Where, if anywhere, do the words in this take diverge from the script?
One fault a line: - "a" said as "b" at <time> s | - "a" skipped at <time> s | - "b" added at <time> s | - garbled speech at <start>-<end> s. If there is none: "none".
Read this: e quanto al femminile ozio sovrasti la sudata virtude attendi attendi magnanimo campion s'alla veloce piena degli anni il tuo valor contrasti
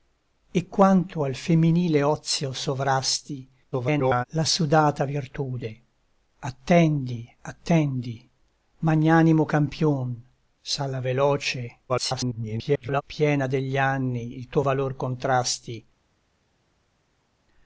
- garbled speech at 3.7-4.2 s
- garbled speech at 11.9-13.0 s